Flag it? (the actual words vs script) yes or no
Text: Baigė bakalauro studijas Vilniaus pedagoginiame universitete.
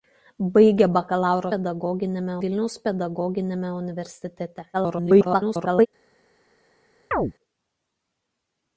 yes